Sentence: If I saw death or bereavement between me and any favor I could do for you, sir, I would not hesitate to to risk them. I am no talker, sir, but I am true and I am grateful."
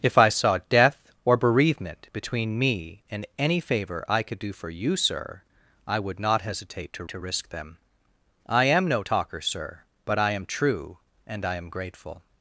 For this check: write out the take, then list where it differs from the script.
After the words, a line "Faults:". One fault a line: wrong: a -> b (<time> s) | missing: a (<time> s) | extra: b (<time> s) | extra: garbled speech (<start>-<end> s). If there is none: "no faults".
If I saw death or bereavement between me and any favor I could do for you, sir, I would not hesitate to to risk them. I am no talker, sir, but I am true and I am grateful."
Faults:
no faults